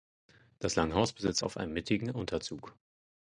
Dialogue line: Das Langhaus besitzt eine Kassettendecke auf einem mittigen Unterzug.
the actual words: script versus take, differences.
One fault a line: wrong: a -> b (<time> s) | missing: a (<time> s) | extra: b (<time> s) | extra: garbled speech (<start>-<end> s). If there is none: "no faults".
missing: eine Kassettendecke (1.4 s)